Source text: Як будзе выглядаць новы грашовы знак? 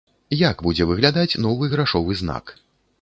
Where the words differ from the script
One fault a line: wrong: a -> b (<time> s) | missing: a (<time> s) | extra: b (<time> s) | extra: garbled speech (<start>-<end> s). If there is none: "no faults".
no faults